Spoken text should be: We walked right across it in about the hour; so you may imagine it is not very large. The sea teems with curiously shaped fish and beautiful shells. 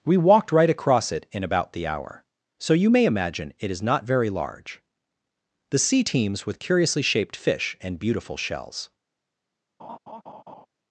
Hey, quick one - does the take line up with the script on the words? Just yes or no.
yes